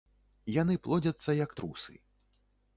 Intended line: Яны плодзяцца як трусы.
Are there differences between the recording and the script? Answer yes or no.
no